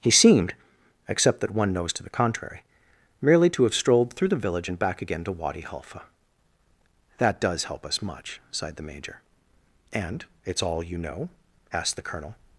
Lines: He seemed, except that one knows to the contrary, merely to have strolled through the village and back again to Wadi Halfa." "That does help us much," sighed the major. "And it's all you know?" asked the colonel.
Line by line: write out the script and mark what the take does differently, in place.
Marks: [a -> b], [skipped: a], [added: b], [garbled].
He seemed, except that one knows to the contrary, merely to have strolled through the village and back again to Wadi Halfa." "That does help us much," sighed the major. "And it's all you know?" asked the colonel.